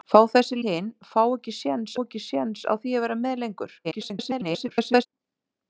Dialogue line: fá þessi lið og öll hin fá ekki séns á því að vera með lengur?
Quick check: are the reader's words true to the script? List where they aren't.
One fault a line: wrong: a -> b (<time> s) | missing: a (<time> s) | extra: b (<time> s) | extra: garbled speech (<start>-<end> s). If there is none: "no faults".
wrong: lið og öll hin fá -> hin fá ekki séns (0.7 s)
extra: garbled speech (3.8-5.1 s)